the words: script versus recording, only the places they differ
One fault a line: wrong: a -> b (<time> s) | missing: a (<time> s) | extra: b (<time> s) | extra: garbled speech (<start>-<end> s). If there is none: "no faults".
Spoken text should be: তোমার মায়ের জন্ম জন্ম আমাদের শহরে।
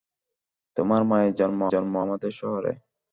no faults